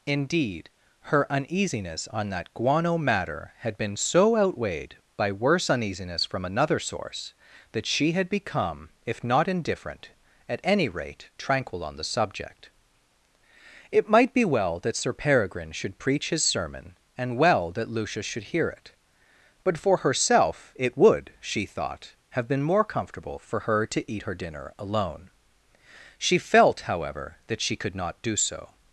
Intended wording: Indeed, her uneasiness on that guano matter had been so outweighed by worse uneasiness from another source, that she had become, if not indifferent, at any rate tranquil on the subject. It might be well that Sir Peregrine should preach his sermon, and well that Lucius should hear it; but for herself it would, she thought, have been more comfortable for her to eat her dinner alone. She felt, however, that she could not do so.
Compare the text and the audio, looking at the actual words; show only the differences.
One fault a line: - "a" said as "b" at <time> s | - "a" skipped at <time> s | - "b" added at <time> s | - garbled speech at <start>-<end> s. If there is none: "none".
none